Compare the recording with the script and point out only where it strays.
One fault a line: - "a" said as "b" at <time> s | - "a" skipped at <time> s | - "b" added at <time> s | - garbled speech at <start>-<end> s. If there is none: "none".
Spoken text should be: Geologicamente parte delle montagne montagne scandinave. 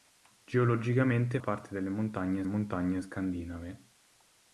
none